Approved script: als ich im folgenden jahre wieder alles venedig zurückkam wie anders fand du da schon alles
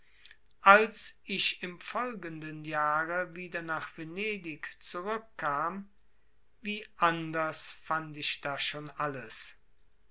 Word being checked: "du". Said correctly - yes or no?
no